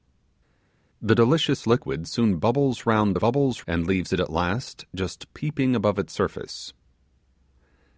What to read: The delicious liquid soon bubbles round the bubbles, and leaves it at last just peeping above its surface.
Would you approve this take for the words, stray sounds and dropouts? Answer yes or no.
yes